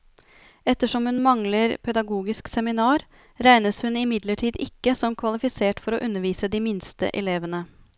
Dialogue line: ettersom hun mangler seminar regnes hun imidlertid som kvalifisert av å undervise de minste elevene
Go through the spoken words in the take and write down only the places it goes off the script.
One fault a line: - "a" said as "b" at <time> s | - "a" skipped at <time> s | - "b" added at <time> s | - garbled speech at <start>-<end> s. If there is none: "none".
- "pedagogisk" added at 1.9 s
- "ikke" added at 4.7 s
- "av" said as "for" at 5.9 s